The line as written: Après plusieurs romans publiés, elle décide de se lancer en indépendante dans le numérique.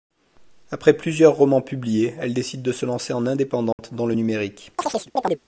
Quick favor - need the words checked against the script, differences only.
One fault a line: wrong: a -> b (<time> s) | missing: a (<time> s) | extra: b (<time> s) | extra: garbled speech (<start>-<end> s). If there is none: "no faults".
no faults